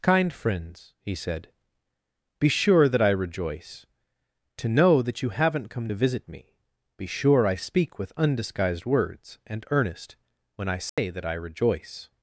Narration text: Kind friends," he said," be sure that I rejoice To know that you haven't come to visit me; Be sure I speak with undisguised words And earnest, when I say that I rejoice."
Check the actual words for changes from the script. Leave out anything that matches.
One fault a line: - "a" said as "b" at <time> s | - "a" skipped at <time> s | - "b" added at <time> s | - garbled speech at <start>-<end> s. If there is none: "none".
none